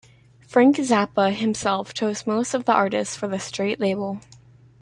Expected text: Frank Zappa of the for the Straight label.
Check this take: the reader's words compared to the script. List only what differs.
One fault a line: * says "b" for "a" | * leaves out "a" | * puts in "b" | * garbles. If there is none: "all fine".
* puts in "himself chose most"
* puts in "artists"